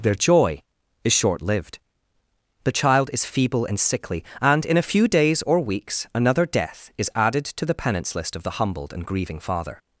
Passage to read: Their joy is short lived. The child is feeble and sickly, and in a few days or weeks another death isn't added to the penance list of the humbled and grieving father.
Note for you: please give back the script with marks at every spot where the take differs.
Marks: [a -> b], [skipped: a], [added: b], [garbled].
Their joy is short lived. The child is feeble and sickly, and in a few days or weeks another death [isn't -> is] added to the penance list of the humbled and grieving father.